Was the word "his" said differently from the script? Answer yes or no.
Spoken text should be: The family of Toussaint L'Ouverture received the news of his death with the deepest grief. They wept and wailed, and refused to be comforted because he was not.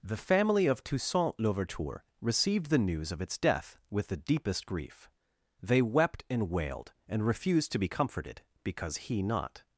yes